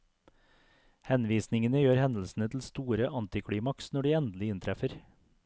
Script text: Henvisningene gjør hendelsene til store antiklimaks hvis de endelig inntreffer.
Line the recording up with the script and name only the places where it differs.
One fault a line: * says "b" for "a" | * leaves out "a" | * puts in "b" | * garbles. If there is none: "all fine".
* says "når" for "hvis"